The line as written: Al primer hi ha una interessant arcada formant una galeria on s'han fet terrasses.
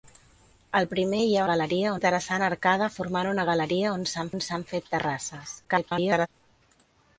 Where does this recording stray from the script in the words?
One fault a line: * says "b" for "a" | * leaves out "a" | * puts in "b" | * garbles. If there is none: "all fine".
* says "galeria" for "una"
* puts in "on s'han"
* garbles